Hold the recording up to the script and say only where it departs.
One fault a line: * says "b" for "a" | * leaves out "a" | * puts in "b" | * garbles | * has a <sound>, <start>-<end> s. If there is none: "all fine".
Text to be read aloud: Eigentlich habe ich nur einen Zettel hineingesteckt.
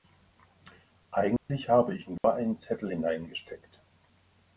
* has a dropout, 1.4-1.5 s
* has a dropout, 2.2-2.2 s